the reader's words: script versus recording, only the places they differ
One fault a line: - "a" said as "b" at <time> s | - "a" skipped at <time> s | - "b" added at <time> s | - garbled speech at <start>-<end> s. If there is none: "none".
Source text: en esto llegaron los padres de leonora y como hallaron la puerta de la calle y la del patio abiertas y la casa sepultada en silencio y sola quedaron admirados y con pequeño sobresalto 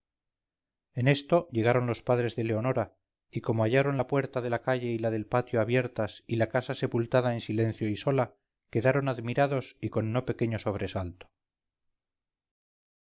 - "no" added at 10.1 s